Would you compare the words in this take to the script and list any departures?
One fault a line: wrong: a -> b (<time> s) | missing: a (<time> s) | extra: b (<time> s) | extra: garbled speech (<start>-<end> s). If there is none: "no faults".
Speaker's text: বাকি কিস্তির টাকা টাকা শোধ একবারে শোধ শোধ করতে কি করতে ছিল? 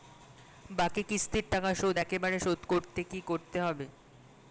missing: টাকা (1.7 s)
missing: শোধ (2.6 s)
wrong: ছিল -> হবে (3.6 s)